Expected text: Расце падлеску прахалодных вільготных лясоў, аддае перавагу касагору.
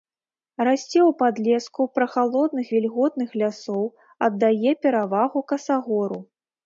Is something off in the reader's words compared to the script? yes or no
yes